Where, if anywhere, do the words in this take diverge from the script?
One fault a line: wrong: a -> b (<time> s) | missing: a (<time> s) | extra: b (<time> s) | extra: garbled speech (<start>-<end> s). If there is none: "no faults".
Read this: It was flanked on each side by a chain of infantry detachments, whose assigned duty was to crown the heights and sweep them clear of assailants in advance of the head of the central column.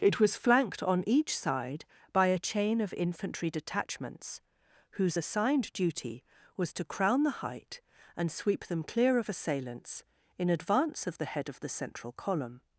wrong: heights -> height (7.4 s)